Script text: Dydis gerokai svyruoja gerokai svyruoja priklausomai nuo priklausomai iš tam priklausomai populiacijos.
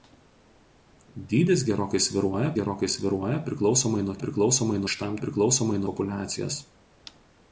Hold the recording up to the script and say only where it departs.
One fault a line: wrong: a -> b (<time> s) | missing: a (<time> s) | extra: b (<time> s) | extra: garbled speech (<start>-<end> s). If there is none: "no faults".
no faults